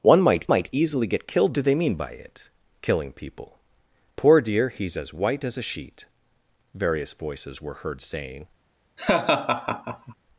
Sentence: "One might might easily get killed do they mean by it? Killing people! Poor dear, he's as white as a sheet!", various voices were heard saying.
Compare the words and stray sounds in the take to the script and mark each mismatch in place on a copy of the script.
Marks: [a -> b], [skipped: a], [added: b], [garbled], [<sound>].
"One might might easily get killed do they mean by it? Killing people! Poor dear, he's as white as a sheet!", various voices were heard saying. [laugh]